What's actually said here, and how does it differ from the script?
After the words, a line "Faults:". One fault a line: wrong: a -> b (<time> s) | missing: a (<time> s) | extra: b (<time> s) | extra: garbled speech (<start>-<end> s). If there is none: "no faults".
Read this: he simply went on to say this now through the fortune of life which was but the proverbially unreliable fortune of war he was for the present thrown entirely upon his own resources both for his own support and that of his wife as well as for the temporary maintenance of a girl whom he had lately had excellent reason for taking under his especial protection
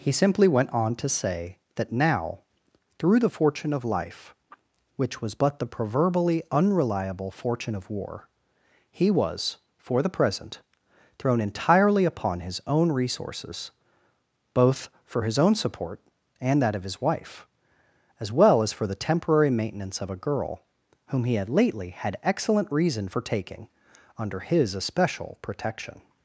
he simply went on to say that now through the fortune of life which was but the proverbially unreliable fortune of war he was for the present thrown entirely upon his own resources both for his own support and that of his wife as well as for the temporary maintenance of a girl whom he had lately had excellent reason for taking under his especial protection
Faults:
wrong: this -> that (1.8 s)